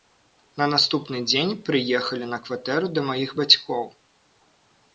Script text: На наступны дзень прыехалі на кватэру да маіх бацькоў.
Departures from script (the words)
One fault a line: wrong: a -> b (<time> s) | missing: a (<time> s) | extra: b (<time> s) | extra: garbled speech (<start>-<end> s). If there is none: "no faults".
no faults